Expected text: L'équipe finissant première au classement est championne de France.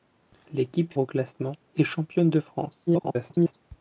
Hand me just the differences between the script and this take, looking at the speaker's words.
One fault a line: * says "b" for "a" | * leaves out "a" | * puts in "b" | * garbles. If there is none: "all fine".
* leaves out "finissant première"
* garbles